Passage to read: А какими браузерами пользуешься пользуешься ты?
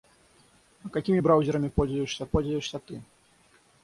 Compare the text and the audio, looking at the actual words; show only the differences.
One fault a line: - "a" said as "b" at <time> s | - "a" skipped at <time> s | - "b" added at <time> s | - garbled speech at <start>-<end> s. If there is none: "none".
none